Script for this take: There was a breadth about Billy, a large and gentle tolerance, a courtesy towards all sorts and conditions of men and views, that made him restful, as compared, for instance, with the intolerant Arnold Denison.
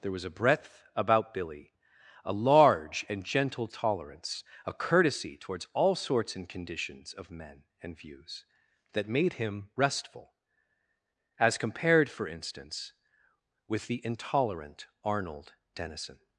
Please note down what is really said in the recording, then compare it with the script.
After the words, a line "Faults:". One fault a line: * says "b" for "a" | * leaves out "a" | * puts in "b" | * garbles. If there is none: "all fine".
There was a breadth about Billy, a large and gentle tolerance, a courtesy towards all sorts and conditions of men and views, that made him restful, as compared, for instance, with the intolerant Arnold Denison.
Faults:
all fine